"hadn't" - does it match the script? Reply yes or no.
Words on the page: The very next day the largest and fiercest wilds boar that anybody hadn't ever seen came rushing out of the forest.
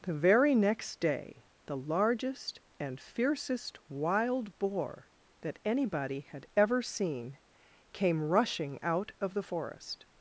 no